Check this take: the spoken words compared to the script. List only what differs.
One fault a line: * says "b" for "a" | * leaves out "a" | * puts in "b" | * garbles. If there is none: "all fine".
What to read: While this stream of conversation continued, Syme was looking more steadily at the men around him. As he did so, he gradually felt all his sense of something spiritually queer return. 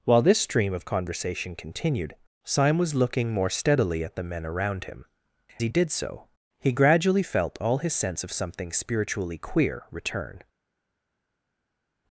* leaves out "As"